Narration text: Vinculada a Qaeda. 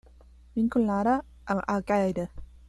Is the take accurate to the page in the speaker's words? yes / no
no